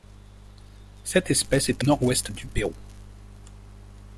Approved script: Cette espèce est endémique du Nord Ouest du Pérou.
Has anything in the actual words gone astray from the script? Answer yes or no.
yes